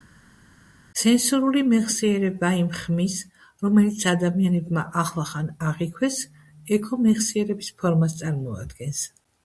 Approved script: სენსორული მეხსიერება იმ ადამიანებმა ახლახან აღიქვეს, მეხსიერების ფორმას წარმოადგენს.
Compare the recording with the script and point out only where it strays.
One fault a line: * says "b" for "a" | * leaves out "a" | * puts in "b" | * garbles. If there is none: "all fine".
* puts in "ხმის რომელიც"
* puts in "ექო"